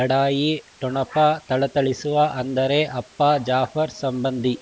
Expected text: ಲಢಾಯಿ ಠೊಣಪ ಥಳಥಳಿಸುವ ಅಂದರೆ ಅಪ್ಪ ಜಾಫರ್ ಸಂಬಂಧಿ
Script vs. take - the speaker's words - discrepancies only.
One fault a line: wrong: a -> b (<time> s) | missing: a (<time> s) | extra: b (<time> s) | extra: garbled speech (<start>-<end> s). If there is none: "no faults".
no faults